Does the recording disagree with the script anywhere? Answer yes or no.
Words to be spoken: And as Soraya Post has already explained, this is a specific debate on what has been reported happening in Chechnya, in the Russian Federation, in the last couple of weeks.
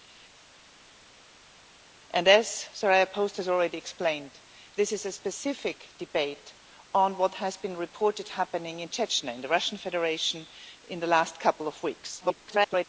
yes